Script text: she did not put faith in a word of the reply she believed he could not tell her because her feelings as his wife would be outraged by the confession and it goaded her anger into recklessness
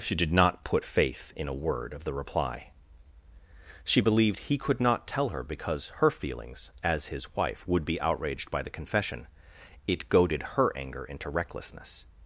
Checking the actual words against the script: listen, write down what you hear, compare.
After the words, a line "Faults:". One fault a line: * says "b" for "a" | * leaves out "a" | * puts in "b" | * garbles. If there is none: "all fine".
she did not put faith in a word of the reply she believed he could not tell her because her feelings as his wife would be outraged by the confession it goaded her anger into recklessness
Faults:
* leaves out "and"